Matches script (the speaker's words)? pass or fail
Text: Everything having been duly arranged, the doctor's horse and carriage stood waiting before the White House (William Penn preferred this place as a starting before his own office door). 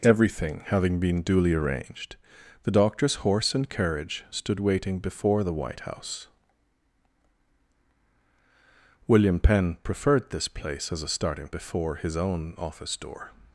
pass